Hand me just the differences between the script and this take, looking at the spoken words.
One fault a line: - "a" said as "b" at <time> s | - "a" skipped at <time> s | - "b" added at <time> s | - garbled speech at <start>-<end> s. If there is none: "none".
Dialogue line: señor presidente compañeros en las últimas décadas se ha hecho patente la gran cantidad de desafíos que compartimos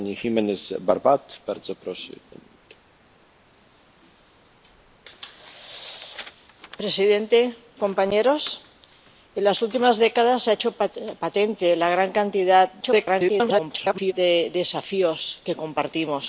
- garbled speech at 12.8-14.1 s